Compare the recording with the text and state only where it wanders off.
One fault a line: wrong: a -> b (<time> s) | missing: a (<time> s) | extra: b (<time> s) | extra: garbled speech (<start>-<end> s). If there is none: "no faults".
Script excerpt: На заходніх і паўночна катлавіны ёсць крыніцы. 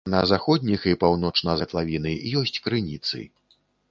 no faults